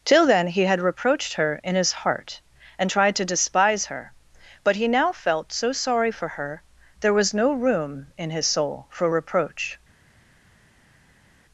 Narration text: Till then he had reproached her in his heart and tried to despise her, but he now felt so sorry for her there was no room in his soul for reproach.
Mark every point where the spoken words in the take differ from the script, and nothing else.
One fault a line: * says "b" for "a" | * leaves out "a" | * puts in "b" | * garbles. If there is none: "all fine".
all fine